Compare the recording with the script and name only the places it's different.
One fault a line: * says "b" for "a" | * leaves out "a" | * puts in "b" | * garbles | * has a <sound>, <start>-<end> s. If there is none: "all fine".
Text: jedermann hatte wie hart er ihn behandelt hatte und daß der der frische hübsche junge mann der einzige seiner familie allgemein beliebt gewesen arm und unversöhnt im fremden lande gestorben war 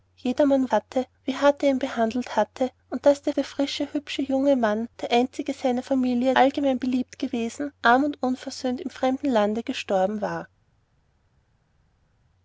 all fine